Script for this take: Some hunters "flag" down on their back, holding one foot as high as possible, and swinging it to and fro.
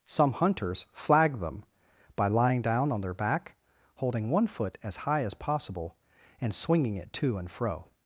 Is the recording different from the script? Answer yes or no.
yes